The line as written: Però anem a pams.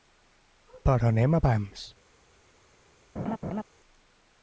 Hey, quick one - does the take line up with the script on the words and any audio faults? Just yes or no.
no